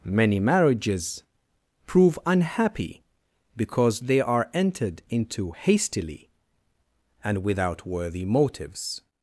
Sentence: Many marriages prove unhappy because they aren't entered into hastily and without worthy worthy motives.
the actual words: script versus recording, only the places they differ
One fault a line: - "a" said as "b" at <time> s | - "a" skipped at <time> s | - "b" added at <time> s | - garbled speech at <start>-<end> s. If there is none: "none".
- "aren't" said as "are" at 4.2 s
- "worthy" skipped at 8.2 s